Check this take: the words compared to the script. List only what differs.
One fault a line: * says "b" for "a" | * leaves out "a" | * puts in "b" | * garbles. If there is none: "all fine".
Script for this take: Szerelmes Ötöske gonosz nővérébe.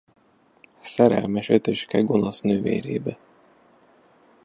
all fine